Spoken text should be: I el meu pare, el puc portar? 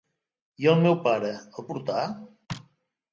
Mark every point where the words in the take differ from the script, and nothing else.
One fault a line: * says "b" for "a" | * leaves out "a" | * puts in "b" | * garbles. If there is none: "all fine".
* leaves out "puc"